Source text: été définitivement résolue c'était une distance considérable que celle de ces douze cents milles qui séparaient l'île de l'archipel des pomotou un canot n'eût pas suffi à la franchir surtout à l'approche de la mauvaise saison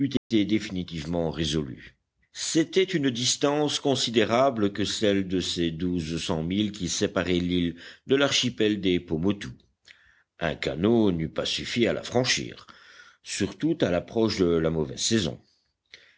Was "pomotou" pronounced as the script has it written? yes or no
yes